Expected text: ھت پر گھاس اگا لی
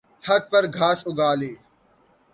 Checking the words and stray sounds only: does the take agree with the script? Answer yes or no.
yes